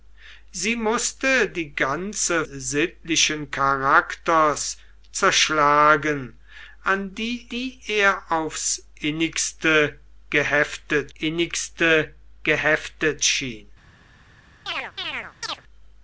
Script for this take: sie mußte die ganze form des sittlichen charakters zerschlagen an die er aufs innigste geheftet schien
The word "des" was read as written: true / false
false